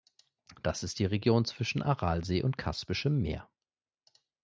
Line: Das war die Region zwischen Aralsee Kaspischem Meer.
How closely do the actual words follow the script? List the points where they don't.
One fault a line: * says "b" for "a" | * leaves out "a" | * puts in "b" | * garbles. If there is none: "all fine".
* says "ist" for "war"
* puts in "und"